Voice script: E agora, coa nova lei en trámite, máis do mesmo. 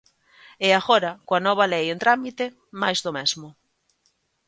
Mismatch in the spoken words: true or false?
false